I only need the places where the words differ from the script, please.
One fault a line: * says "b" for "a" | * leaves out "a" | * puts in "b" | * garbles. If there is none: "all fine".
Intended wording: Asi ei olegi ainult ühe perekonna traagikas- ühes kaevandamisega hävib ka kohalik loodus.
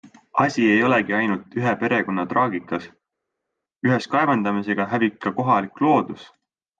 all fine